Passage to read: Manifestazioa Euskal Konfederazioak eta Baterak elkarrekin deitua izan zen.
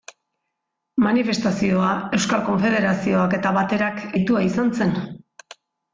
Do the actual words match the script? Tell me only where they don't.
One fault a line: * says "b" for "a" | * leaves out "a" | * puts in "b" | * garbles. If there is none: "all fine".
* leaves out "elkarrekin"